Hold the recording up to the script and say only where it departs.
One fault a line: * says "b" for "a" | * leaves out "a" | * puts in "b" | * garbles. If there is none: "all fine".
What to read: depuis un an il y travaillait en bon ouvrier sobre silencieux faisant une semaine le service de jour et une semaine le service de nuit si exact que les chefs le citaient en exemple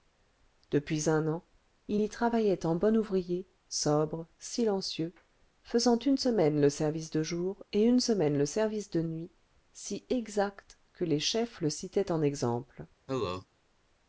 all fine